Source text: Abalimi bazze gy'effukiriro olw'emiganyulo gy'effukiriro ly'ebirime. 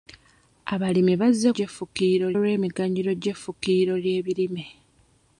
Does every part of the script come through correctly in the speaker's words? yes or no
yes